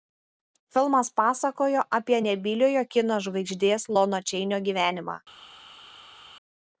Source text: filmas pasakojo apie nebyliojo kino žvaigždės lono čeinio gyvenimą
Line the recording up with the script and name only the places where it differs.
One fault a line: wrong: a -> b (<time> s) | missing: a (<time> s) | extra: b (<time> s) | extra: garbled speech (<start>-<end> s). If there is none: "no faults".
no faults